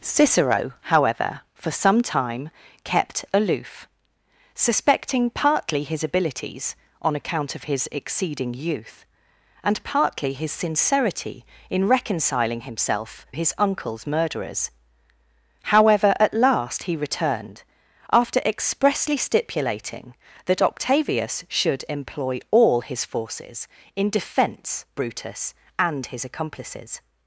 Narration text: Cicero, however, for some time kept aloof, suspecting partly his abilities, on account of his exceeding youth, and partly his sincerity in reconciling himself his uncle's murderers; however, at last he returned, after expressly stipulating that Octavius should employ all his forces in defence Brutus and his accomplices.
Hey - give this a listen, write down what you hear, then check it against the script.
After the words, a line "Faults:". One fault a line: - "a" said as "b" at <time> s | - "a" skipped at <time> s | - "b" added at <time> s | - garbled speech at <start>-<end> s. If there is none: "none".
Cicero, however, for some time kept aloof, suspecting partly his abilities, on account of his exceeding youth, and partly his sincerity in reconciling himself his uncle's murderers; however, at last he returned, after expressly stipulating that Octavius should employ all his forces in defence Brutus and his accomplices.
Faults:
none